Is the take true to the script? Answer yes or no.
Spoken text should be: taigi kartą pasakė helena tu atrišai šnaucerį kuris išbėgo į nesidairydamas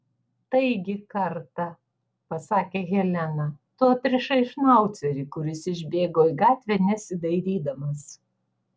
no